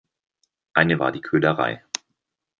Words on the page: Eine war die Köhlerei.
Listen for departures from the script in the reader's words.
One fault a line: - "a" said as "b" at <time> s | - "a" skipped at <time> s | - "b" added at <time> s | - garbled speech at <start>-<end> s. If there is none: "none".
none